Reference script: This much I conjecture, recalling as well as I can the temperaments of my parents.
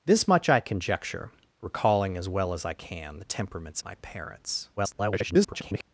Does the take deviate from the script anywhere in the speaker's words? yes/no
yes